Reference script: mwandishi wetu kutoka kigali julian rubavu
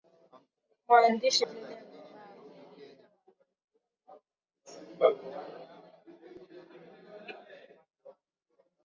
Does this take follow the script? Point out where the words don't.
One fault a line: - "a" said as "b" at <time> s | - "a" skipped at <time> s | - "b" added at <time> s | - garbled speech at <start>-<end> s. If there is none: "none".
- "wetu kutoka kigali" skipped at 1.4 s